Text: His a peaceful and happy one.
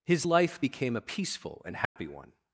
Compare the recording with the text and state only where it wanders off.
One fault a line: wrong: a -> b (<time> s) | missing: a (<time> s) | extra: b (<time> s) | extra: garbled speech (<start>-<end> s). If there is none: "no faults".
extra: life became (0.3 s)